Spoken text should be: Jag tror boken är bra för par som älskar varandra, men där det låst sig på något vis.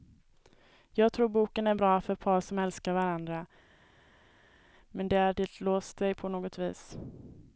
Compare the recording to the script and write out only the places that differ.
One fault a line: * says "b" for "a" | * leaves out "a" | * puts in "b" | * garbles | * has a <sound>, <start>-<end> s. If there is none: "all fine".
all fine